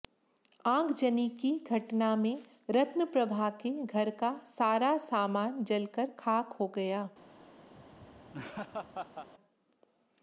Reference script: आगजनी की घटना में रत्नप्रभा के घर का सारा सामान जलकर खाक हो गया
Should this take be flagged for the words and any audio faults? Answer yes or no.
yes